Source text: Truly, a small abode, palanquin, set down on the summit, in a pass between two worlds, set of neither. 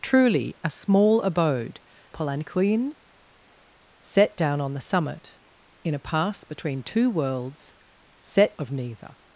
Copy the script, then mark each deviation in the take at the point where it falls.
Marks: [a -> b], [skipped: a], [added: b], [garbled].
Truly, a small abode, palanquin, set down on the summit, in a pass between two worlds, set of neither.